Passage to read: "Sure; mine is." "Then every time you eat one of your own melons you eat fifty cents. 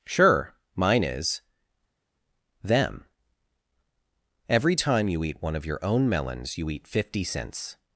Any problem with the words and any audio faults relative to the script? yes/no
yes